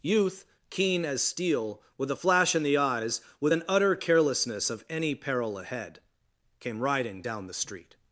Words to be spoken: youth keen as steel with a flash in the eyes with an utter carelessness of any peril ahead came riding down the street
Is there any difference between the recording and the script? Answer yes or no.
no